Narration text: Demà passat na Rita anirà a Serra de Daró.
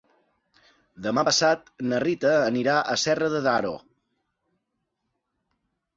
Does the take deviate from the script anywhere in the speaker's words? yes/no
no